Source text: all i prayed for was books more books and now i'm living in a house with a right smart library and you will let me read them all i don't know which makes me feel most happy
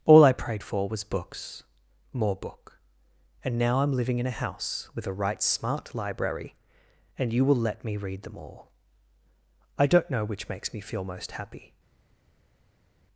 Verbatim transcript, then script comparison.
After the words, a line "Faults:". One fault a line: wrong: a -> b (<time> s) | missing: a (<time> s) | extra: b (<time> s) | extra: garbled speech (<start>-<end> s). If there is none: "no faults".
all i prayed for was books more book and now i'm living in a house with a right smart library and you will let me read them all i don't know which makes me feel most happy
Faults:
wrong: books -> book (2.3 s)